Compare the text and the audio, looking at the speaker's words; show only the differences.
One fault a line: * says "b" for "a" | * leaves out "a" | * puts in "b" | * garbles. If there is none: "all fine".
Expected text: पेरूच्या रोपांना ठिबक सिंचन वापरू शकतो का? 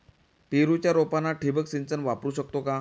all fine